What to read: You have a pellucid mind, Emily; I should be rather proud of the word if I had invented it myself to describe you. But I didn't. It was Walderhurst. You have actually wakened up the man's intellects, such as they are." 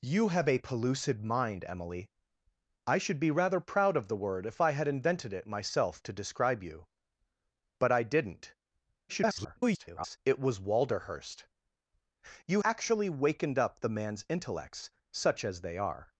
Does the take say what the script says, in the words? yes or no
no